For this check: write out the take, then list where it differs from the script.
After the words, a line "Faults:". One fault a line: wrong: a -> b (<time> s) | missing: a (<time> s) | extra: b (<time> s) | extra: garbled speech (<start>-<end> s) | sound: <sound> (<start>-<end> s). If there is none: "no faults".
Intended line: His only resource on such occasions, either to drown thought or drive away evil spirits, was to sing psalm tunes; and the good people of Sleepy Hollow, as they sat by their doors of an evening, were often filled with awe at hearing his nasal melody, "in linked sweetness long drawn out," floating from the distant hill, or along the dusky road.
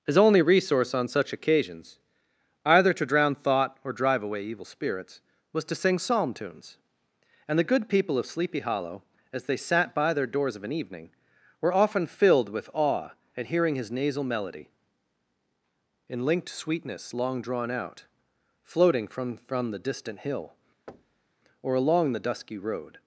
His only resource on such occasions, either to drown thought or drive away evil spirits, was to sing psalm tunes; and the good people of Sleepy Hollow, as they sat by their doors of an evening, were often filled with awe at hearing his nasal melody, "in linked sweetness long drawn out," floating from from the distant hill, or along the dusky road.
Faults:
extra: from (19.4 s)
sound: thud (20.9-21.3 s)